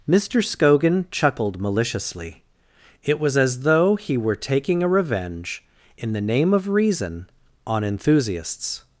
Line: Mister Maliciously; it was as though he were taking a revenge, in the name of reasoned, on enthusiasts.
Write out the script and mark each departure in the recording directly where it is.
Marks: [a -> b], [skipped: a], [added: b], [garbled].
Mister [added: Scogan chuckled] Maliciously; it was as though he were taking a revenge, in the name of [reasoned, -> reason] on enthusiasts.